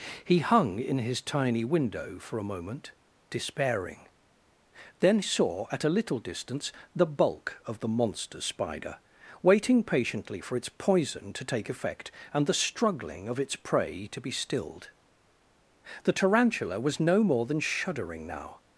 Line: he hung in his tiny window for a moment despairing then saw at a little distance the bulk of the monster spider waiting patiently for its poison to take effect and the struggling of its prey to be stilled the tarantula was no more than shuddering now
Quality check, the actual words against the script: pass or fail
pass